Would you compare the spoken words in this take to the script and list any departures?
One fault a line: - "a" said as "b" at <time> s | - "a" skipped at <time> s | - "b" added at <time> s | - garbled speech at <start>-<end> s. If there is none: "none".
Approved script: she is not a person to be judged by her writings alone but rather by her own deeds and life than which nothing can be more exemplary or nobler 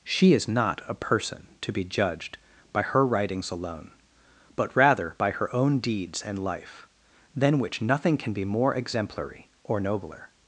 none